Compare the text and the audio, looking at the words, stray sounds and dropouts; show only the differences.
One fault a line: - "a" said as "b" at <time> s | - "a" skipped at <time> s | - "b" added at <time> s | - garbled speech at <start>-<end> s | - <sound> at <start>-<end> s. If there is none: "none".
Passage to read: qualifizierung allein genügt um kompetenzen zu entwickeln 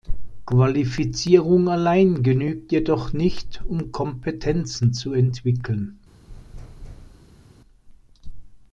- "jedoch nicht" added at 2.7 s
- thud at 6.3-7.5 s